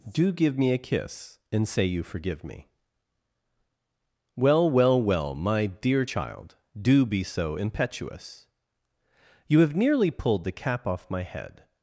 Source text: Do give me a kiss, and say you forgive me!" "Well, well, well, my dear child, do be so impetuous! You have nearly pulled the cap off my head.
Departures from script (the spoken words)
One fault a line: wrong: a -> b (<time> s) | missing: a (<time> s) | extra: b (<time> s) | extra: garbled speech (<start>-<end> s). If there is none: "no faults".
no faults